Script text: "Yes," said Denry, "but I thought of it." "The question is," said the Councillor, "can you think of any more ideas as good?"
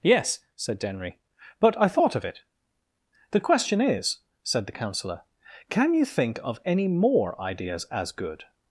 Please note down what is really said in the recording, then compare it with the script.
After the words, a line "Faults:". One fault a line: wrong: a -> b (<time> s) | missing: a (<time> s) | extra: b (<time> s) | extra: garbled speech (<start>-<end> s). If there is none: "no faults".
"Yes," said Denry, "but I thought of it." "The question is," said the Councillor, "can you think of any more ideas as good?"
Faults:
no faults